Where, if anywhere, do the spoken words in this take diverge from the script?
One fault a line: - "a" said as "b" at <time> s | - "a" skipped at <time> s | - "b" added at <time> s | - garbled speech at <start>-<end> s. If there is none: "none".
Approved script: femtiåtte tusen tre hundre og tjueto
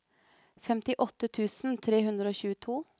none